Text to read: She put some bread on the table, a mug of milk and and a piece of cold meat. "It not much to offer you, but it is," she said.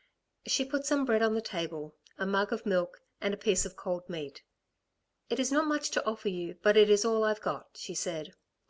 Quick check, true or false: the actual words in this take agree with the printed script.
false